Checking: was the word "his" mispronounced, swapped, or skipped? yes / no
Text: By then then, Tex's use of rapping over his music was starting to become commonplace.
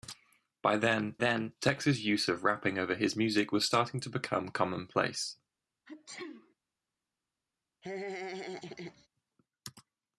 no